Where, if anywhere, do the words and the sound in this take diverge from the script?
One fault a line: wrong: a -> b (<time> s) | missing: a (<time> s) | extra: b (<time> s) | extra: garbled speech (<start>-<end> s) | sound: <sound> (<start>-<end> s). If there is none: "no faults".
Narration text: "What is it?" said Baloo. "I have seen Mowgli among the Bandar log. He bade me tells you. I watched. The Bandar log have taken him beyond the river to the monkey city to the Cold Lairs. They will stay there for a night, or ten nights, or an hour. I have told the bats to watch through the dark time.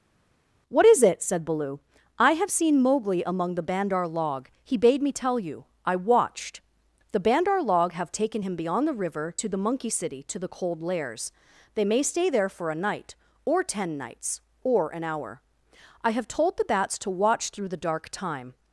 wrong: tells -> tell (5.1 s)
wrong: will -> may (11.9 s)